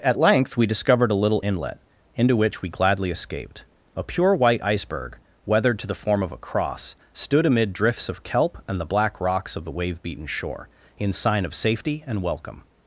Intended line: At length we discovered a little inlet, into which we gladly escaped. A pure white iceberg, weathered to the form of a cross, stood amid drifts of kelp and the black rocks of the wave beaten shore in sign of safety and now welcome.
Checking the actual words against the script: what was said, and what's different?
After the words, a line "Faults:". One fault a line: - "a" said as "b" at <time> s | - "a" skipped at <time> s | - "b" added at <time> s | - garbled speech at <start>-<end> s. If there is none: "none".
At length we discovered a little inlet, into which we gladly escaped. A pure white iceberg, weathered to the form of a cross, stood amid drifts of kelp and the black rocks of the wave beaten shore in sign of safety and welcome.
Faults:
- "now" skipped at 12.2 s